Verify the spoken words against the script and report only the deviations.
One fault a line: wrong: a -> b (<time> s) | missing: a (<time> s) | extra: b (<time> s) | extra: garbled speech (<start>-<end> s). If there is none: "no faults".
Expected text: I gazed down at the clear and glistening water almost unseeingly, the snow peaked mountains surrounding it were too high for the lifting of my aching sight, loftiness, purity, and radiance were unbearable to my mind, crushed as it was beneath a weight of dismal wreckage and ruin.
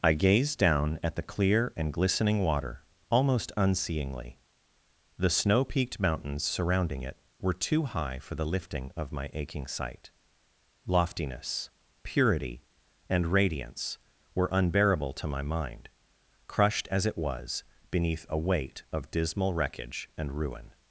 no faults